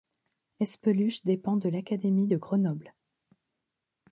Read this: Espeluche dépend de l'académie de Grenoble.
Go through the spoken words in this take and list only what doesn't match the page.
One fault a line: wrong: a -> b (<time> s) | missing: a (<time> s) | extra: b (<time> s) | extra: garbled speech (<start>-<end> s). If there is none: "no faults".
no faults